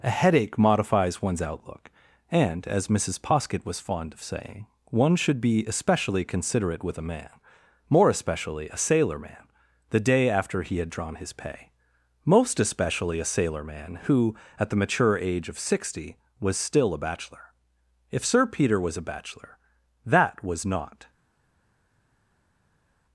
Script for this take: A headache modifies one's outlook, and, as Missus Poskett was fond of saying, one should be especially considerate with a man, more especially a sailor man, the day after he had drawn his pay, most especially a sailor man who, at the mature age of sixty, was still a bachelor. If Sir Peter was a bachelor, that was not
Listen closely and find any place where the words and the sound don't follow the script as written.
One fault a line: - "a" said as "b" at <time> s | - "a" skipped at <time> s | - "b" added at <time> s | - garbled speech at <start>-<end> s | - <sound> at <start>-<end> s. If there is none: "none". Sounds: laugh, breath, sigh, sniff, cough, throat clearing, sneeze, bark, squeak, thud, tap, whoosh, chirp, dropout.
none